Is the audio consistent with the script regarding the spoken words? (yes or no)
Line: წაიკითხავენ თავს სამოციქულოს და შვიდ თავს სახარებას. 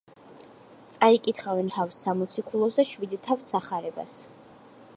yes